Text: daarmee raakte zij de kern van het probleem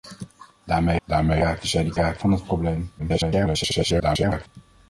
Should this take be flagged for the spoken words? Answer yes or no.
yes